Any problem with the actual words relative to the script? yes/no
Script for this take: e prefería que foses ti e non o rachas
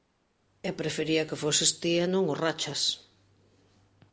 no